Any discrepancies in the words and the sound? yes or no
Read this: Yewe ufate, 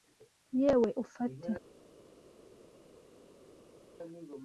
no